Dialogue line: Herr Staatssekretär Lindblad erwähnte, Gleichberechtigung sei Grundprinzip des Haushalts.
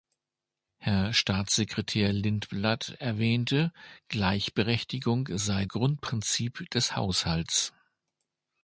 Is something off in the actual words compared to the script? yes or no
no